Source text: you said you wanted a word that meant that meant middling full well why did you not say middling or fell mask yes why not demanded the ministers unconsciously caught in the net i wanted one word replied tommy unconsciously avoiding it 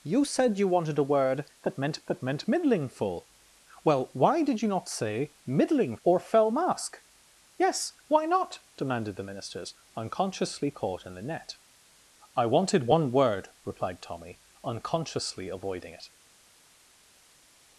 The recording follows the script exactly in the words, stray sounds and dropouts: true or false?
true